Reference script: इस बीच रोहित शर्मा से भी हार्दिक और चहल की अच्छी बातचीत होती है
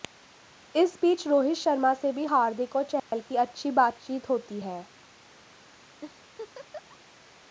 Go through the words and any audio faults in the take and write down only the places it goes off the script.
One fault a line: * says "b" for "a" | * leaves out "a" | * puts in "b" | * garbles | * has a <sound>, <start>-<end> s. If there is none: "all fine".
* has a dropout, 3.0-3.1 s
* has a laugh, 6.0-7.0 s